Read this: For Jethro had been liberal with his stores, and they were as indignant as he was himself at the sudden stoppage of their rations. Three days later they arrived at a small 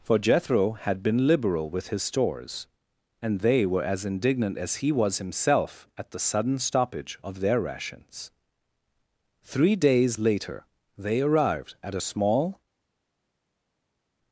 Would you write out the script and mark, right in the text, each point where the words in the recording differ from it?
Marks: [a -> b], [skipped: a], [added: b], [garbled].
For Jethro had been liberal with his stores, and they were as indignant as he was himself at the sudden stoppage of their rations. Three days later they arrived at a small